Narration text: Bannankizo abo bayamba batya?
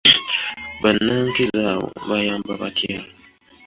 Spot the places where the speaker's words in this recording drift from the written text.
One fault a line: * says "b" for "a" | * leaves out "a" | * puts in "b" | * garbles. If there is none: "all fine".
all fine